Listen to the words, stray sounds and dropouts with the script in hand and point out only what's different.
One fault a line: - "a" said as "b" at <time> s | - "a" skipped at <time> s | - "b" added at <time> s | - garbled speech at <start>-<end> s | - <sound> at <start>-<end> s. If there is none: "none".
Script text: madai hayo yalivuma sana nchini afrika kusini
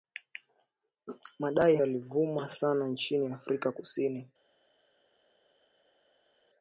- "hayo" skipped at 1.8 s